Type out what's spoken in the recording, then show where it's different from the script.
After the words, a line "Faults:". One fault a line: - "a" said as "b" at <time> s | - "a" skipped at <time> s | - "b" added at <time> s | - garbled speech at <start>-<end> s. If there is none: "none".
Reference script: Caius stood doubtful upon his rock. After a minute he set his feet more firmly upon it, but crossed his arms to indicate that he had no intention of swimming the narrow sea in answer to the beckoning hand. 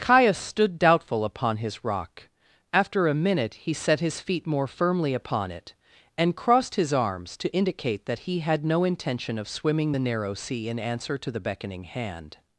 Caius stood doubtful upon his rock. After a minute he set his feet more firmly upon it, and crossed his arms to indicate that he had no intention of swimming the narrow sea in answer to the beckoning hand.
Faults:
- "but" said as "and" at 6.2 s